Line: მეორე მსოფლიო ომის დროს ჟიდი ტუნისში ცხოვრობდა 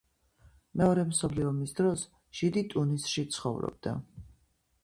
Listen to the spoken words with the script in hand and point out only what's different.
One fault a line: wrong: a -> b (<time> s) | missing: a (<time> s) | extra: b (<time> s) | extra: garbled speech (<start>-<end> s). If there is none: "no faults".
no faults